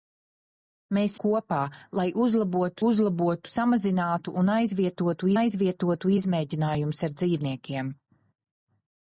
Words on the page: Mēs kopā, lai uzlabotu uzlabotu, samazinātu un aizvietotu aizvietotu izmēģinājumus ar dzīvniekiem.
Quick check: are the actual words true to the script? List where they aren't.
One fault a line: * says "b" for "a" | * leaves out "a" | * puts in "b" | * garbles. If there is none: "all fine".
all fine